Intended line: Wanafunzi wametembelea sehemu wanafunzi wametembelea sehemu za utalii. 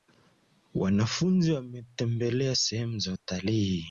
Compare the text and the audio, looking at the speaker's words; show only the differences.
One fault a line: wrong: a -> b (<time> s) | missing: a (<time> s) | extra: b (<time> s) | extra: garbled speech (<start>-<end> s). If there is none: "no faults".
missing: wanafunzi wametembelea sehemu (3.0 s)